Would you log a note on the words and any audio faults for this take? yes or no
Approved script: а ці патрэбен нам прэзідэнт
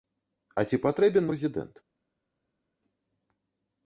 yes